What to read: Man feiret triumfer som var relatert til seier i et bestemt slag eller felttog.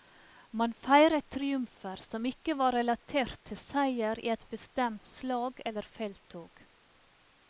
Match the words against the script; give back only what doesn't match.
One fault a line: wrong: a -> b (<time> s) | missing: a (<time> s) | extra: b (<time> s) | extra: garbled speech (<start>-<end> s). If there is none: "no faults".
extra: ikke (2.3 s)